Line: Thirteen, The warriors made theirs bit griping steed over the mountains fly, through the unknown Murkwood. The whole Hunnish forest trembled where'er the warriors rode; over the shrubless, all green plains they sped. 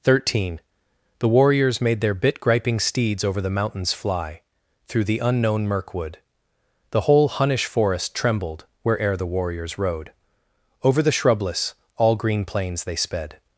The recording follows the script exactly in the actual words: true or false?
false